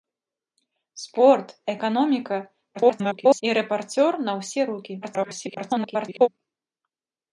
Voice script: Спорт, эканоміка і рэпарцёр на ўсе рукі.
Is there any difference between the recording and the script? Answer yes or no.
yes